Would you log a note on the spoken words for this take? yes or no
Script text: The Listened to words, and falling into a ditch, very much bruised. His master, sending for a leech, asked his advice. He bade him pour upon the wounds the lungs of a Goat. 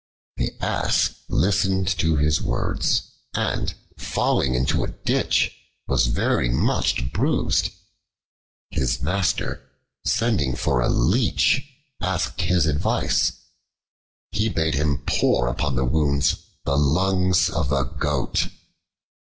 yes